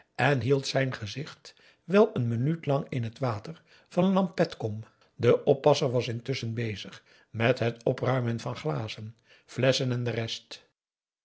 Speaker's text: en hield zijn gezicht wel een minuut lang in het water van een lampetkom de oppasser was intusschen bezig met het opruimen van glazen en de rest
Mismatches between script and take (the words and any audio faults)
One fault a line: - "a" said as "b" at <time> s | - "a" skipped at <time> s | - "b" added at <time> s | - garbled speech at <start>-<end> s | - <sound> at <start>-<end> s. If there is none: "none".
- "flesschen" added at 9.4 s